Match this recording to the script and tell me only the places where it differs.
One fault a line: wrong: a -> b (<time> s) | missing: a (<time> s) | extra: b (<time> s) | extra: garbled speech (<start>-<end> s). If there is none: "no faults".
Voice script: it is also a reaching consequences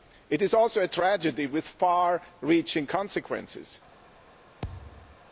extra: tragedy with far (0.9 s)